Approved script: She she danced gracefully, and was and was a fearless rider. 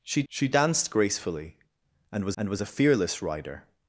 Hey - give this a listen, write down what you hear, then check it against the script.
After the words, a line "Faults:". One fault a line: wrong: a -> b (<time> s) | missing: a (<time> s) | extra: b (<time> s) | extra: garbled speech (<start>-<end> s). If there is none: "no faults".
She she danced gracefully, and was and was a fearless rider.
Faults:
no faults